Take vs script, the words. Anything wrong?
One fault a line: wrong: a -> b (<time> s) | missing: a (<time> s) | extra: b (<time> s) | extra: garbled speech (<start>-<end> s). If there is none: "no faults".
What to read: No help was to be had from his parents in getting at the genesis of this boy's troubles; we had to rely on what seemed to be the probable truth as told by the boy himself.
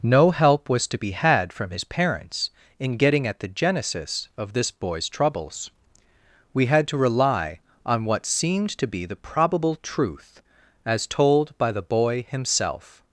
no faults